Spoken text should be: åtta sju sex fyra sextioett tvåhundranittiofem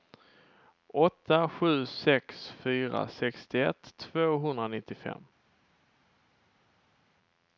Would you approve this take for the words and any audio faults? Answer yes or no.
yes